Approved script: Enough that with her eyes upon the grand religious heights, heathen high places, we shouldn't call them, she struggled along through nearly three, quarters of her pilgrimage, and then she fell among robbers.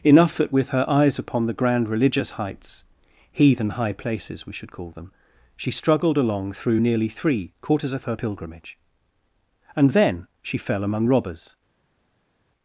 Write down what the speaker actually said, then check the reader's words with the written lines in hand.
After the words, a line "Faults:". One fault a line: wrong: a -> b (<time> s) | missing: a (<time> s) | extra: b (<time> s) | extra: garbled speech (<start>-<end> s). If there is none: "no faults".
Enough that with her eyes upon the grand religious heights, heathen high places, we should call them, she struggled along through nearly three, quarters of her pilgrimage, and then she fell among robbers.
Faults:
wrong: shouldn't -> should (4.5 s)